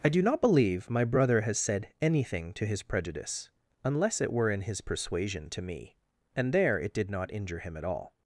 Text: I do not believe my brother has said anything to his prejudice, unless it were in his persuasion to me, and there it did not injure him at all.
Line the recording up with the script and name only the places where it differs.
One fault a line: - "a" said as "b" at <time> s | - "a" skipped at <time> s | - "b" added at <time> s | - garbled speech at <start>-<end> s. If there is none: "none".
none